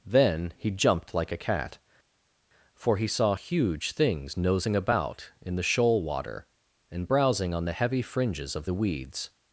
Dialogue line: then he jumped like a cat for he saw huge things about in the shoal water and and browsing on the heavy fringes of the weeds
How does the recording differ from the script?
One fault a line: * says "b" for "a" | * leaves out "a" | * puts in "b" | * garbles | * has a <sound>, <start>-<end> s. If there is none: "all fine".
* puts in "nosing"
* leaves out "and"